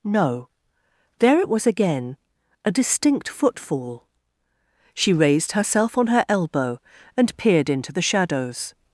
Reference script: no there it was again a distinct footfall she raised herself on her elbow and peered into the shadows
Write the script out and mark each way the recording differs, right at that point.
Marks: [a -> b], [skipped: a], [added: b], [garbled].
no there it was again a distinct footfall she raised herself on her elbow and peered into the shadows